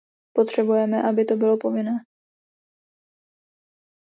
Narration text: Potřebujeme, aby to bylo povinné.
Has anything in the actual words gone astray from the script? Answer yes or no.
no